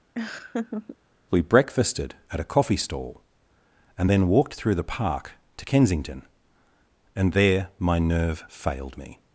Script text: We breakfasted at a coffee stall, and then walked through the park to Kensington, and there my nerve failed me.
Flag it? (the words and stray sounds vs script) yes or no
yes